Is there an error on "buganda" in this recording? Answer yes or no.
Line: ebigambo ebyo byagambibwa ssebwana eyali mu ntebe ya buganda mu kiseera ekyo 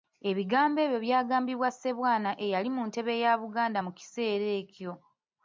no